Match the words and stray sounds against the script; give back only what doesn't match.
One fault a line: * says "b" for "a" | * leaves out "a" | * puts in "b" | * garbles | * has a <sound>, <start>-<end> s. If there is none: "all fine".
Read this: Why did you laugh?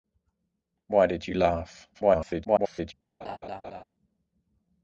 * garbles
* has a laugh, 3.2-3.8 s